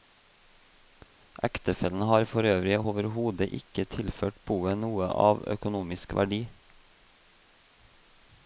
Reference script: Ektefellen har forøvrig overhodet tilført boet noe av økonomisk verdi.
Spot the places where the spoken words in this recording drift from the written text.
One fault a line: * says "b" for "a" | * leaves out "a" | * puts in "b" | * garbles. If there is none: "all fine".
* puts in "ikke"